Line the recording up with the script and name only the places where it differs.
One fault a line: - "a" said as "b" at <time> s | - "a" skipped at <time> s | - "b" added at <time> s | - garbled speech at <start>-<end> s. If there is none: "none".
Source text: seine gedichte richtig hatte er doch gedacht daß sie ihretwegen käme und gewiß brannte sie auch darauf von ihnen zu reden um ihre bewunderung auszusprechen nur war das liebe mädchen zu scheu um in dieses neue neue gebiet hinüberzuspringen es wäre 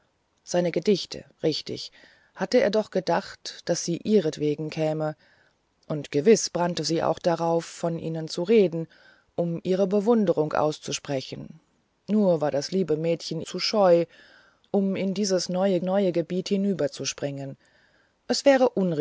none